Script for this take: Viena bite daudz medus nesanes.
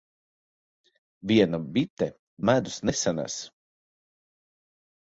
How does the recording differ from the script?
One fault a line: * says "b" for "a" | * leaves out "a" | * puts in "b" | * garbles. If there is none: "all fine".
* leaves out "daudz"